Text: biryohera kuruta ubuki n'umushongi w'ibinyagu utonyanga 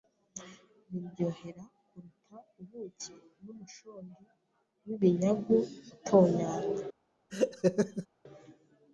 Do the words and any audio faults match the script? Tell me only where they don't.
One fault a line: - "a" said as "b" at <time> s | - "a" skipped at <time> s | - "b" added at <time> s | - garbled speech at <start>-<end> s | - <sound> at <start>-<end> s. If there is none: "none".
- laugh at 7.3-8.1 s